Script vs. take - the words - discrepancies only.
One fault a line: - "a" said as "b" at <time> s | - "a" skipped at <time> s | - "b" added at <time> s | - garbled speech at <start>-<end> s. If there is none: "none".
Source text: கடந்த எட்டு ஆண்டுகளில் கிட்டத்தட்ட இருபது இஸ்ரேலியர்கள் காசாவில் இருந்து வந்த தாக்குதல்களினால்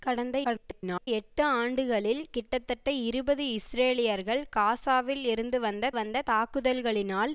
- garbled speech at 0.4-1.1 s
- "வந்த" added at 5.9 s